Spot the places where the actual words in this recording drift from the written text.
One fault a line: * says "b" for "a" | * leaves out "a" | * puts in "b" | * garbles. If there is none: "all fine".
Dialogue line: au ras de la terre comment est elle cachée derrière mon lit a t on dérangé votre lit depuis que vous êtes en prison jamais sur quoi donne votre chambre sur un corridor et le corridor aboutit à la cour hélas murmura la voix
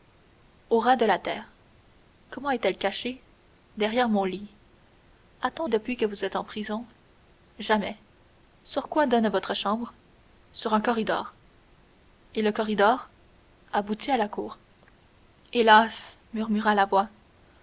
* leaves out "dérangé votre lit"